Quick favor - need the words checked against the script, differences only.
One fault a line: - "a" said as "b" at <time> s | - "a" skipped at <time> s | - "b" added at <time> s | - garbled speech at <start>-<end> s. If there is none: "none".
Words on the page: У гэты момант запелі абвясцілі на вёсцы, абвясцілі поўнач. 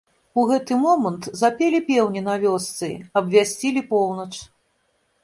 - "абвясцілі" said as "пеўні" at 1.9 s